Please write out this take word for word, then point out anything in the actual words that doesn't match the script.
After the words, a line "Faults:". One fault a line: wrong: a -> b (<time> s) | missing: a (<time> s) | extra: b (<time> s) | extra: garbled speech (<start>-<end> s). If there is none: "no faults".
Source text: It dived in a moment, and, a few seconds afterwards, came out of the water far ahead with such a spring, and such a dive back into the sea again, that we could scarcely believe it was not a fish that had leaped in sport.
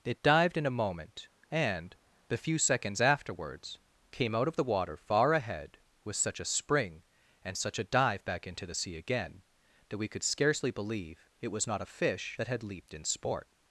It dived in a moment, and, the few seconds afterwards, came out of the water far ahead with such a spring, and such a dive back into the sea again, that we could scarcely believe it was not a fish that had leaped in sport.
Faults:
wrong: a -> the (2.3 s)